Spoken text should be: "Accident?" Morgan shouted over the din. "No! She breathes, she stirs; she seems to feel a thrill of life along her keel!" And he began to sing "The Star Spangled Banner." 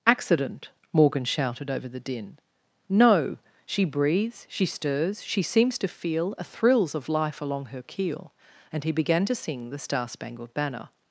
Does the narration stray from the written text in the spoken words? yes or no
yes